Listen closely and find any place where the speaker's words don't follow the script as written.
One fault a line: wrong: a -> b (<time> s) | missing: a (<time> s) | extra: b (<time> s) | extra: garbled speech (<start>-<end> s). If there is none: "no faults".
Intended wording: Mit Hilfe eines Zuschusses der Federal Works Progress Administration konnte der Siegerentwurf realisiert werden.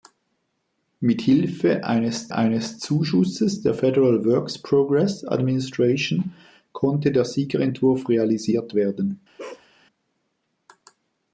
extra: eines (2.3 s)